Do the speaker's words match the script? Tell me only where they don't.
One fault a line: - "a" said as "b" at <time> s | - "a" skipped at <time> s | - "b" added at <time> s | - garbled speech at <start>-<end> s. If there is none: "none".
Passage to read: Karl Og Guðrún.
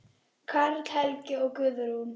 - "Helgi" added at 0.9 s